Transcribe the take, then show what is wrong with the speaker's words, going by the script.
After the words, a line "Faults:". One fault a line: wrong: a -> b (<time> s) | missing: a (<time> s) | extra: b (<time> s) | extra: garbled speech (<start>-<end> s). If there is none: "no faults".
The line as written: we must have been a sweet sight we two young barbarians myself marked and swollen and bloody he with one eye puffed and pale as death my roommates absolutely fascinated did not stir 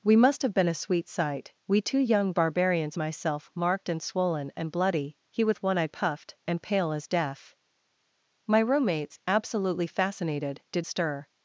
we must have been a sweet sight we two young barbarians myself marked and swollen and bloody he with one eye puffed and pale as death my roommates absolutely fascinated did stir
Faults:
missing: not (10.8 s)